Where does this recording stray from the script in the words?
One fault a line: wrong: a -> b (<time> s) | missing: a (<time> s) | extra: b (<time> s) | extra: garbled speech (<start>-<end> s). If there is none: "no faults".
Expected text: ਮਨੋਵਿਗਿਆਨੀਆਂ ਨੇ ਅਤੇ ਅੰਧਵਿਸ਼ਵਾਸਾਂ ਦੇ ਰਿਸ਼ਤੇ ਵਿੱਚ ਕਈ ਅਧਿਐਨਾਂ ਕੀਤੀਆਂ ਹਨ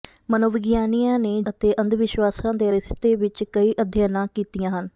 no faults